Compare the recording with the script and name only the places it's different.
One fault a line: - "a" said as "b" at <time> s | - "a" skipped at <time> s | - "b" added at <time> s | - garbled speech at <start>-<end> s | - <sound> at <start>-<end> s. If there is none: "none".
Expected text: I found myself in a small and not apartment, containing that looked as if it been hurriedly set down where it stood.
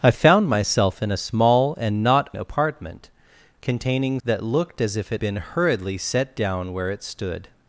none